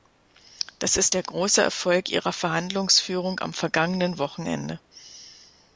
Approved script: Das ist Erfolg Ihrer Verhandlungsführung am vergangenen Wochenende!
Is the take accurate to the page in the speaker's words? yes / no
no